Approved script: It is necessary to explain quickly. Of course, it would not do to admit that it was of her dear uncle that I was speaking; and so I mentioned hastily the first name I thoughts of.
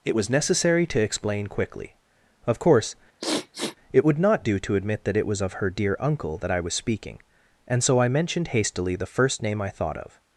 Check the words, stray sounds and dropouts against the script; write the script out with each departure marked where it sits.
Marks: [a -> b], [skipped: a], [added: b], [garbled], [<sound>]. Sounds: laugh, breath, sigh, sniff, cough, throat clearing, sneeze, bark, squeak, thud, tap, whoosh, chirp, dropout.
It [is -> was] necessary to explain quickly. Of course, [sniff] it would not do to admit that it was of her dear uncle that I was speaking; and so I mentioned hastily the first name I [thoughts -> thought] of.